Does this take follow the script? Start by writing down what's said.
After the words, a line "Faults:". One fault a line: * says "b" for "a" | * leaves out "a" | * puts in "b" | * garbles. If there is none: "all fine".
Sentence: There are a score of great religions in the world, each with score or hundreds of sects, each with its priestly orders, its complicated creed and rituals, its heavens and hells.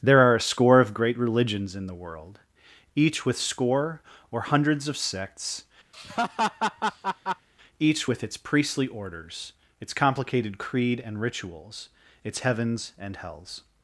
There are a score of great religions in the world, each with score or hundreds of sects, each with its priestly orders, its complicated creed and rituals, its heavens and hells.
Faults:
all fine